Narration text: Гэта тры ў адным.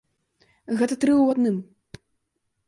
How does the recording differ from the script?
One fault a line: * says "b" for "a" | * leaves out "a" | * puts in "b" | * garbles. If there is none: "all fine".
all fine